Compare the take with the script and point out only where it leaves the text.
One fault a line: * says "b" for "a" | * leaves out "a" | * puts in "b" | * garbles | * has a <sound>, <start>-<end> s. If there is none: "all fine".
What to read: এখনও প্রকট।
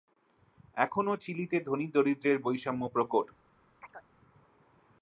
* puts in "চিলিতে ধনী-দরিদ্রের বৈষম্য"
* has a chirp, 3.8-4.1 s